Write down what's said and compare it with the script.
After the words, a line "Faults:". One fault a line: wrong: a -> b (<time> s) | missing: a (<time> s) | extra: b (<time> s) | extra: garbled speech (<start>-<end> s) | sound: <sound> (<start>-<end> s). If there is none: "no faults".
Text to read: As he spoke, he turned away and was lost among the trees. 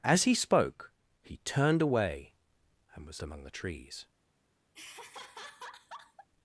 As he spoke, he turned away and was among the trees.
Faults:
missing: lost (3.2 s)
sound: laugh (4.7-6.3 s)